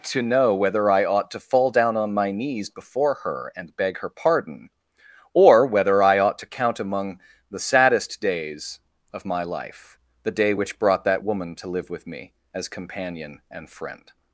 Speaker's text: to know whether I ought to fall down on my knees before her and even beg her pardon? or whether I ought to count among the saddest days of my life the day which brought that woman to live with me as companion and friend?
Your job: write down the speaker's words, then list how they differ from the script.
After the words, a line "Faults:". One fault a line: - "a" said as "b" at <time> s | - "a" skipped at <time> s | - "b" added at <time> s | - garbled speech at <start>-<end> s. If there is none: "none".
to know whether I ought to fall down on my knees before her and beg her pardon? or whether I ought to count among the saddest days of my life the day which brought that woman to live with me as companion and friend?
Faults:
- "even" skipped at 3.8 s